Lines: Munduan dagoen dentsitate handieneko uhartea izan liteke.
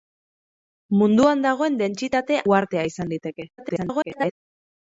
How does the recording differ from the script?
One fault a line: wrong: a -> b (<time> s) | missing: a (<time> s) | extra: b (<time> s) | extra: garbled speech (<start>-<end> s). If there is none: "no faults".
missing: handieneko (2.4 s)
extra: garbled speech (3.6-4.3 s)